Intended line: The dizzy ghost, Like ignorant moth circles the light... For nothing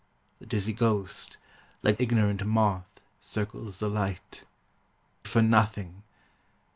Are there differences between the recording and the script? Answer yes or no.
no